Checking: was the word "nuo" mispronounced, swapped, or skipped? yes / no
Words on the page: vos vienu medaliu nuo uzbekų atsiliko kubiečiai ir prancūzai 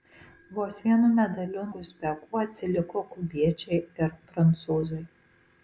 yes